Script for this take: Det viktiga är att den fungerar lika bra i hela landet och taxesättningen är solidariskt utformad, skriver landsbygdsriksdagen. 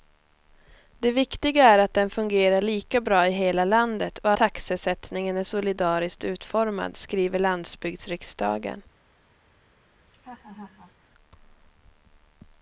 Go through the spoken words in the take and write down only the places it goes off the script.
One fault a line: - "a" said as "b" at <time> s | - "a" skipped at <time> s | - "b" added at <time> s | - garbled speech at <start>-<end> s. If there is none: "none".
none